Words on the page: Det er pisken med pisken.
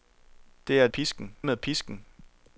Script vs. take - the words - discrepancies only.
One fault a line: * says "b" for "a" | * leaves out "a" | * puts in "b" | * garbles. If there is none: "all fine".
all fine